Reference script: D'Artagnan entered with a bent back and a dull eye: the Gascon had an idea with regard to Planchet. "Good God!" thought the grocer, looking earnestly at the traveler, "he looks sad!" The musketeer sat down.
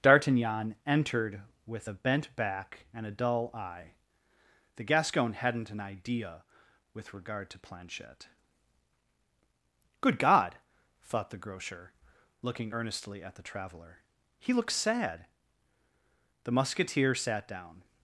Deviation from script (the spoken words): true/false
true